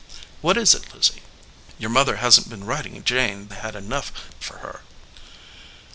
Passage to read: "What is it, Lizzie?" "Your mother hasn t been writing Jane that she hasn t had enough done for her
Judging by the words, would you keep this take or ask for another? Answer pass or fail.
fail